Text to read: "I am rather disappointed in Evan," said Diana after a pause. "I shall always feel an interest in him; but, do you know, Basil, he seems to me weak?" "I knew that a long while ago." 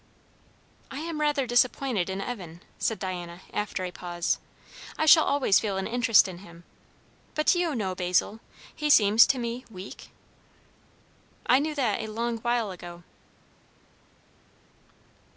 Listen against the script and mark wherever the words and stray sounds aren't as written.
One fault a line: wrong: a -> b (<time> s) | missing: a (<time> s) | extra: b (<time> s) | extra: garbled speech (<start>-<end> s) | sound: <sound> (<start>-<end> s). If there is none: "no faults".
no faults